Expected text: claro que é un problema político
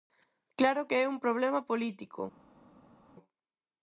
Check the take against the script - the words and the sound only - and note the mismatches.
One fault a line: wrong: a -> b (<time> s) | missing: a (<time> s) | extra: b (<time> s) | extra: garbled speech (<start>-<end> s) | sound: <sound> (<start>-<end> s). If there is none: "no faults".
no faults